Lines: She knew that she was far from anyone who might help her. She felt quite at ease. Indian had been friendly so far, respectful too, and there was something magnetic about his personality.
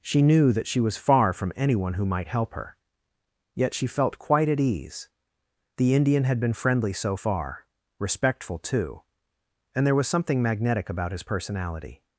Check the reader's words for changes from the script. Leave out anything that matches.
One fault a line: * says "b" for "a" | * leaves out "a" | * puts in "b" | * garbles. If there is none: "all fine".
* puts in "Yet"
* puts in "The"